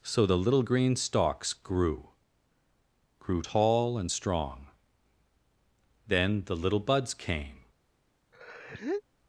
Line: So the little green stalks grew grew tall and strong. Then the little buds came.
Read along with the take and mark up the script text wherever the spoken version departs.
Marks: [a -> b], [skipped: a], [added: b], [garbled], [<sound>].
So the little green stalks grew grew tall and strong. Then the little buds came. [sneeze]